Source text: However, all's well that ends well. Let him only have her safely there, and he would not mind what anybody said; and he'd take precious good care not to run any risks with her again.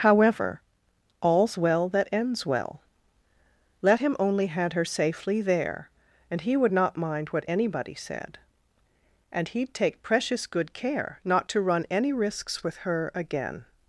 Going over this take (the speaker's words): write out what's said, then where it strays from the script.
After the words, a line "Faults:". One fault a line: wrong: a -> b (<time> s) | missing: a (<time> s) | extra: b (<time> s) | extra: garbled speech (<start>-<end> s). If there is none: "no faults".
However, all's well that ends well. Let him only had her safely there, and he would not mind what anybody said; and he'd take precious good care not to run any risks with her again.
Faults:
wrong: have -> had (4.5 s)